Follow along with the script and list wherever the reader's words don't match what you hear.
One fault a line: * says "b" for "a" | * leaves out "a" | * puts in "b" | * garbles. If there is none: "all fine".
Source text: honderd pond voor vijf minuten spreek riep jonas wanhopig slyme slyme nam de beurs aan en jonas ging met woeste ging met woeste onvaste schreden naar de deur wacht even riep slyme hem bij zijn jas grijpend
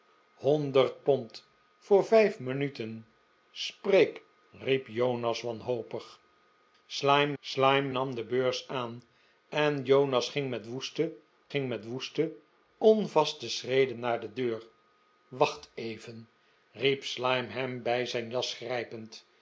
all fine